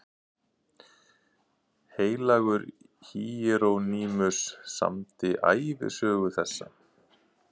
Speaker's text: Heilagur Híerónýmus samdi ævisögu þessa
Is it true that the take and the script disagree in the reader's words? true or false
false